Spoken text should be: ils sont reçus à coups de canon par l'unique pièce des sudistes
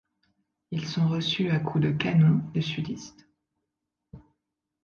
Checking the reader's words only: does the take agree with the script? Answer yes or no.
no